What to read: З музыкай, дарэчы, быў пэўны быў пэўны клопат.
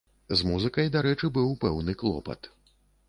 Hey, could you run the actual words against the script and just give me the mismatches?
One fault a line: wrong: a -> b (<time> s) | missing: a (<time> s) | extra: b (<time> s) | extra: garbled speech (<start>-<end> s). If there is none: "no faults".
missing: быў пэўны (2.0 s)